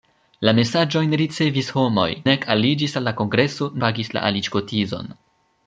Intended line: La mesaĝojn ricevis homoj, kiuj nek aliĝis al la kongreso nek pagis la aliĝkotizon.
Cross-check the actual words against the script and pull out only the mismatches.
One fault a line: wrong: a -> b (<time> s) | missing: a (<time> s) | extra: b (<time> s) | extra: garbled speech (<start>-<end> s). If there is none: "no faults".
missing: kiuj (2.1 s)
missing: nek (3.7 s)